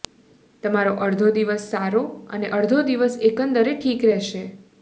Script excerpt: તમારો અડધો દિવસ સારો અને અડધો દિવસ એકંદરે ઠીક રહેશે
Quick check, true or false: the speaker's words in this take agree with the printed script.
true